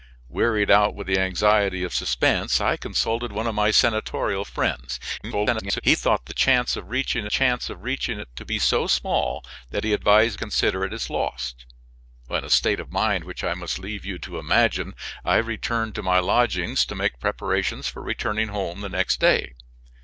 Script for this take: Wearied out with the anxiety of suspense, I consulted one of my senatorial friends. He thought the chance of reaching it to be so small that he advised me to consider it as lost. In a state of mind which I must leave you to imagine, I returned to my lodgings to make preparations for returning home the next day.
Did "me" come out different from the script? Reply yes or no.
yes